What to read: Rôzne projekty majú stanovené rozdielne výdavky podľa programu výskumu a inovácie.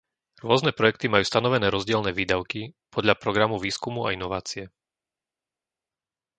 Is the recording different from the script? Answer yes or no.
no